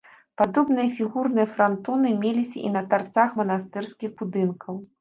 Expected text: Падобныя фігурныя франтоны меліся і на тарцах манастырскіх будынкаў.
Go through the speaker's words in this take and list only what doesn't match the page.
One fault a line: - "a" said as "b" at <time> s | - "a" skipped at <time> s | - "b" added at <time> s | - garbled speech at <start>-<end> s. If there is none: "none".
none